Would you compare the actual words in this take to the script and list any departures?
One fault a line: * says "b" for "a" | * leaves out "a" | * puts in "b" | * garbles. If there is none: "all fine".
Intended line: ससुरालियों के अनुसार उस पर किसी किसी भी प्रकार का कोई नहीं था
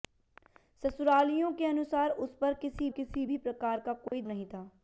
all fine